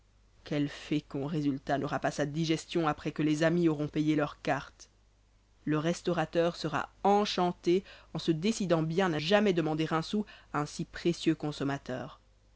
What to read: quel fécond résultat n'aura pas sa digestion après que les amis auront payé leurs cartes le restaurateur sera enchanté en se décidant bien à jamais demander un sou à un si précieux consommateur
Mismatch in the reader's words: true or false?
false